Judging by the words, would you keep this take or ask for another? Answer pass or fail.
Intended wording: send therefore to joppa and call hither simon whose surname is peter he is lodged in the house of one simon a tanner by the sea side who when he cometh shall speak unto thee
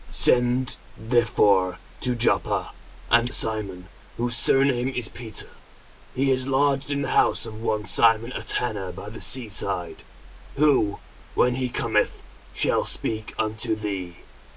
fail